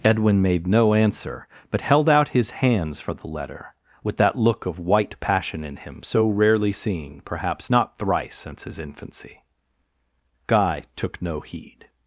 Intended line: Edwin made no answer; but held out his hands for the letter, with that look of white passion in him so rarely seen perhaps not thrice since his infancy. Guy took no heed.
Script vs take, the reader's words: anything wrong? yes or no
no